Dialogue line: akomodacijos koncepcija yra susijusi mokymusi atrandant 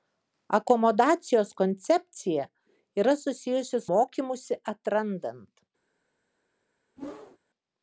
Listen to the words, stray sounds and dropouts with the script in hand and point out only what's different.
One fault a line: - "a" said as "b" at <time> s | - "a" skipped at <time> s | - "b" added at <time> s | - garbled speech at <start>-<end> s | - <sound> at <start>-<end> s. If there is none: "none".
- whoosh at 7.0-7.4 s